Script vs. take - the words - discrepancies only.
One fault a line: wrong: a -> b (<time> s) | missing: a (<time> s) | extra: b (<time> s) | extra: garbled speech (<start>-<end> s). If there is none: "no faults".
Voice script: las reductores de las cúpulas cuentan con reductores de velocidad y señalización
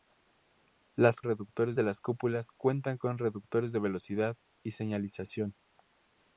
no faults